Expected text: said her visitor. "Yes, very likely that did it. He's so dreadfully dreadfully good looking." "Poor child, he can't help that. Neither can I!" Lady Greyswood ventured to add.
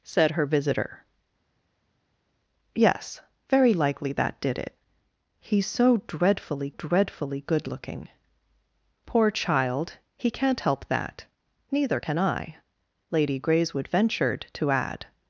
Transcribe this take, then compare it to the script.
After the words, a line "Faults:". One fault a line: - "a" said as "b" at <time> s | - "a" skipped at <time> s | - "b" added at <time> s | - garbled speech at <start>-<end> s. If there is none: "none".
said her visitor. "Yes, very likely that did it. He's so dreadfully dreadfully good looking." "Poor child, he can't help that. Neither can I!" Lady Greyswood ventured to add.
Faults:
none